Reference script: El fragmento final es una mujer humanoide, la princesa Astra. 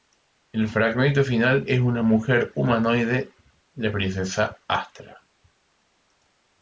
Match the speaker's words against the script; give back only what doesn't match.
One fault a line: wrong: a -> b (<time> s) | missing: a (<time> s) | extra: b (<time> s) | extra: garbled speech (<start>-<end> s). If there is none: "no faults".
no faults